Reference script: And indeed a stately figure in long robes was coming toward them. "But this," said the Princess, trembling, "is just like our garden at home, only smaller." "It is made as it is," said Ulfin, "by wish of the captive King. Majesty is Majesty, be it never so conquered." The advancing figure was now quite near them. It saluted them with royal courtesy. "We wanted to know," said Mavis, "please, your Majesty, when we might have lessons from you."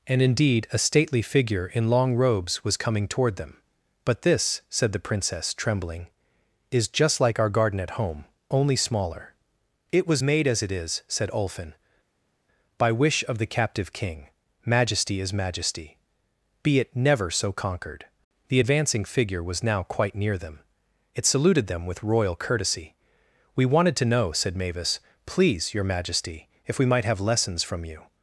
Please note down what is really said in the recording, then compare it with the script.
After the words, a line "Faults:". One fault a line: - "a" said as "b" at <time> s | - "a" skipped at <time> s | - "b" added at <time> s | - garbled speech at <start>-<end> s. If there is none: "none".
And indeed a stately figure in long robes was coming toward them. "But this," said the Princess, trembling, "is just like our garden at home, only smaller." "It was made as it is," said Ulfin, "by wish of the captive King. Majesty is Majesty, be it never so conquered." The advancing figure was now quite near them. It saluted them with royal courtesy. "We wanted to know," said Mavis, "please, your Majesty, if we might have lessons from you."
Faults:
- "is" said as "was" at 10.1 s
- "when" said as "if" at 26.7 s